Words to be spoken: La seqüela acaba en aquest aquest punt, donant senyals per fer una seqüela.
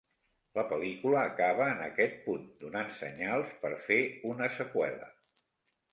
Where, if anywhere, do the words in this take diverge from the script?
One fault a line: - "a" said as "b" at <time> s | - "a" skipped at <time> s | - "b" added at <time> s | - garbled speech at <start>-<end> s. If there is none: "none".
- "seqüela" said as "pel·lícula" at 0.7 s
- "aquest" skipped at 2.2 s